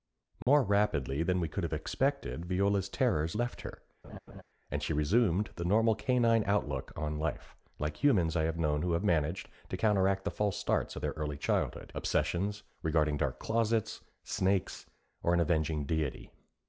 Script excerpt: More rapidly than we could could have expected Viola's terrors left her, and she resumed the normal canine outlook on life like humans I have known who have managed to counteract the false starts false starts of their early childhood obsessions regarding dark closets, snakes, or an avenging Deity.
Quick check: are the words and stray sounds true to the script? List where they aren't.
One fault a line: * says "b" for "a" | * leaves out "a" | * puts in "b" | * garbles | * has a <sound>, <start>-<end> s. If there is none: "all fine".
* has a dropout, 0.4-0.5 s
* leaves out "could"
* has a laugh, 4.0-4.4 s
* leaves out "false starts"